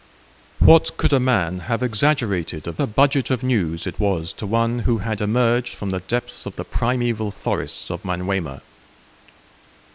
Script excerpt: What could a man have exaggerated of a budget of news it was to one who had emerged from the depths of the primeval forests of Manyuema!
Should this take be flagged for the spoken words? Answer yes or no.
no